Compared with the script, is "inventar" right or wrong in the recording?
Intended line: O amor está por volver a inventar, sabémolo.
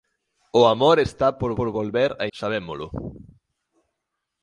wrong